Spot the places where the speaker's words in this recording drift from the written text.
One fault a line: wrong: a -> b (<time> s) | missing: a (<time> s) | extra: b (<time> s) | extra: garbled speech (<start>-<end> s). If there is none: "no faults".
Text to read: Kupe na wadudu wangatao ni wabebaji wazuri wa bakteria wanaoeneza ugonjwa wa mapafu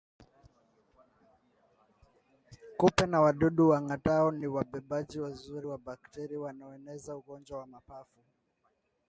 no faults